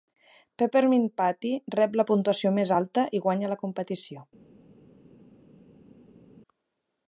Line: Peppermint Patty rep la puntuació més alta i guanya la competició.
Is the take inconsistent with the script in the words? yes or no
no